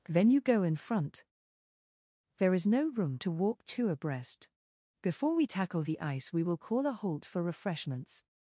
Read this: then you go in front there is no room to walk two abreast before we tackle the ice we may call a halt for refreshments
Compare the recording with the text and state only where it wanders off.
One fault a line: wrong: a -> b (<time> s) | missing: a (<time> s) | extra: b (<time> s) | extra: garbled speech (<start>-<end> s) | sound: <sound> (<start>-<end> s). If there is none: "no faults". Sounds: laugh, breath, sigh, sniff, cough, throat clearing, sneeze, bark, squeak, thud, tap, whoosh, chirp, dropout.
wrong: may -> will (6.4 s)